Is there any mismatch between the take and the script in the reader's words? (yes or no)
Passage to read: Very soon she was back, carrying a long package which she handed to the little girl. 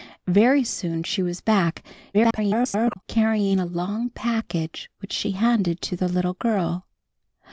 yes